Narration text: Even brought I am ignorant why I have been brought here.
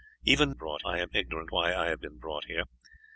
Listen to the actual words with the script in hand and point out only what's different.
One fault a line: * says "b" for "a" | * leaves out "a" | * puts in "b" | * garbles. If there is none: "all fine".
all fine